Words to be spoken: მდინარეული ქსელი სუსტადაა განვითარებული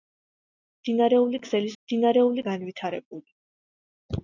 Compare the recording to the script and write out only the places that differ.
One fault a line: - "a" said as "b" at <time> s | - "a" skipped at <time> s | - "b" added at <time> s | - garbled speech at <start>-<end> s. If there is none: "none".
- "სუსტადაა" said as "მდინარეული" at 1.8 s